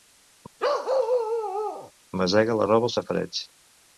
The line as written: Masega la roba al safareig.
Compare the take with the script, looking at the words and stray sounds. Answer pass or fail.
fail